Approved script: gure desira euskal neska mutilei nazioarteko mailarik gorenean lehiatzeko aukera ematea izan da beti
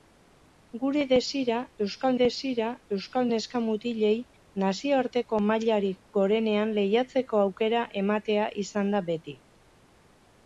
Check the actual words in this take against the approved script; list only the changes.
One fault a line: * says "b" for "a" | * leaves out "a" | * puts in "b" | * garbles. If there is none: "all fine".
* puts in "desira euskal"